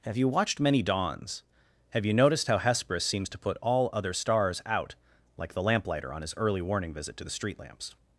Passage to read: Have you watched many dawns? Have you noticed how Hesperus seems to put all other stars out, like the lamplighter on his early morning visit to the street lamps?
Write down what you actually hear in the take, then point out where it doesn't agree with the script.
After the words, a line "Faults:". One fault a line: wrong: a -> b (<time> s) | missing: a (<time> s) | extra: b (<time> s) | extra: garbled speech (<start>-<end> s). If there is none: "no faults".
Have you watched many dawns? Have you noticed how Hesperus seems to put all other stars out, like the lamplighter on his early warning visit to the street lamps?
Faults:
wrong: morning -> warning (6.6 s)